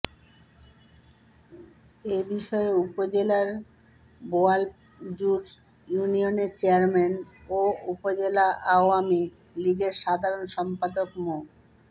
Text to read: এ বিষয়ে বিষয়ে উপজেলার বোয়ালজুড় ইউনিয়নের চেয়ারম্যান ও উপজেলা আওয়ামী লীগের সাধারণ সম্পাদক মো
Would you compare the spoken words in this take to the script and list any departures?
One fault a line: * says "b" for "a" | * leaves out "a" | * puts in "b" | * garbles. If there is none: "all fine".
* leaves out "বিষয়ে"